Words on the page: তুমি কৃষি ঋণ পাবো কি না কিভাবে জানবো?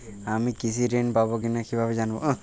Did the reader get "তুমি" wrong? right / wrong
wrong